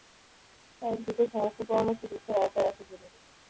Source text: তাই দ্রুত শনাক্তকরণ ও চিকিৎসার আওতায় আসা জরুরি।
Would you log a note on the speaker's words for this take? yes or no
no